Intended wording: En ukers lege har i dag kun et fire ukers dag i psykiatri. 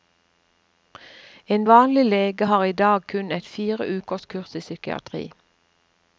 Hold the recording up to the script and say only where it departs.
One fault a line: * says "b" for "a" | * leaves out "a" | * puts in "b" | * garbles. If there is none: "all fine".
* says "vanlig" for "ukers"
* says "kurs" for "dag"